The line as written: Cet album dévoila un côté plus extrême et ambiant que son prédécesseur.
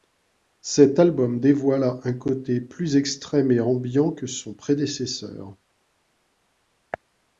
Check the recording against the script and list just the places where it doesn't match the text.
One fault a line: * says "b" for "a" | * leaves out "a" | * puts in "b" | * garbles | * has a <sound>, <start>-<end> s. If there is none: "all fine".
all fine